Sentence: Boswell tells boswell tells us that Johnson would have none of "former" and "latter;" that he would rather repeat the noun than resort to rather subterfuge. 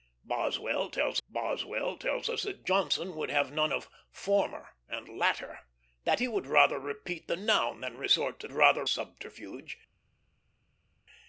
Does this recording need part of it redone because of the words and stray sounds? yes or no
no